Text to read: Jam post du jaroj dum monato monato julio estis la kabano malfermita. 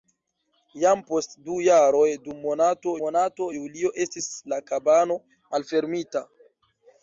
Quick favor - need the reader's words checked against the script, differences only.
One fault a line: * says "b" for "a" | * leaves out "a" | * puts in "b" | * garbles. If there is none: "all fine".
all fine